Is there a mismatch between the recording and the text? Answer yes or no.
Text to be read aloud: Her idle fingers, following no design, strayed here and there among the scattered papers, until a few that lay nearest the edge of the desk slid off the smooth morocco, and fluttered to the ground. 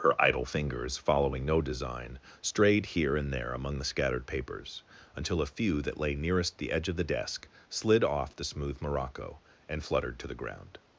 no